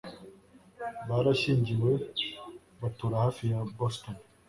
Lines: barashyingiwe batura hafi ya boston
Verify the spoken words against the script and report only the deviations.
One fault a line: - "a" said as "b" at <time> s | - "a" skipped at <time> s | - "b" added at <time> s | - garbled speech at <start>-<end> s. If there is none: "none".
none